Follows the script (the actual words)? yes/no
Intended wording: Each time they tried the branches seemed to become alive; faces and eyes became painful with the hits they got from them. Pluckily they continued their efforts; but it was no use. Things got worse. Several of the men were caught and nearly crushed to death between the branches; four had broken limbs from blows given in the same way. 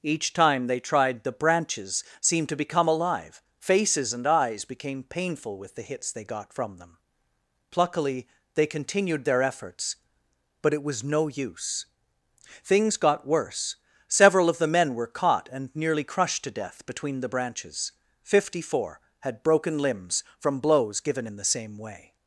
no